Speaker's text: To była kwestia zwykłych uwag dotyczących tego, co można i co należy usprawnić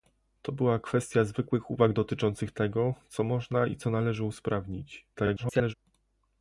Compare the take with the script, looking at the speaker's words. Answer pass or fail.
fail